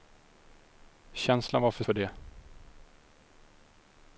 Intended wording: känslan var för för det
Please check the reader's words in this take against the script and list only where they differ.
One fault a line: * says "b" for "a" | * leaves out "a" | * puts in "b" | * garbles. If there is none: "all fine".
all fine